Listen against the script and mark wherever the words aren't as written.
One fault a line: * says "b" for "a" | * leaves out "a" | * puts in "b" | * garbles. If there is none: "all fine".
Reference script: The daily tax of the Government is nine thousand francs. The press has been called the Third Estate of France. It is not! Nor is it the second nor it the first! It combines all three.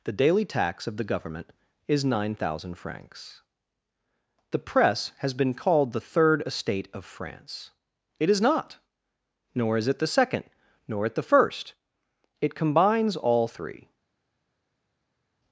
all fine